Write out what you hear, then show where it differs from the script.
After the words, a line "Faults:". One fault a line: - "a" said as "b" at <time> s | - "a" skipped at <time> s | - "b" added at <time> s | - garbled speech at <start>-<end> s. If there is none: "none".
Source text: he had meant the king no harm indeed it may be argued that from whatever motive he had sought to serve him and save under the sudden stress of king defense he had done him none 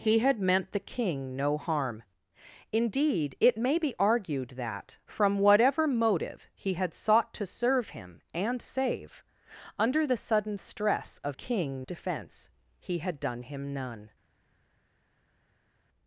he had meant the king no harm indeed it may be argued that from whatever motive he had sought to serve him and save under the sudden stress of king defense he had done him none
Faults:
none